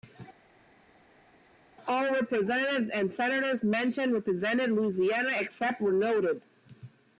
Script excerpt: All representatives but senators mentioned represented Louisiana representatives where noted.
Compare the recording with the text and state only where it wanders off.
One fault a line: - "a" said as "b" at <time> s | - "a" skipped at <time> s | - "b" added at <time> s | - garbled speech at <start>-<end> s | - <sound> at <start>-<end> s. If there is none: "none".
- "but" said as "and" at 2.9 s
- "representatives" said as "except" at 5.4 s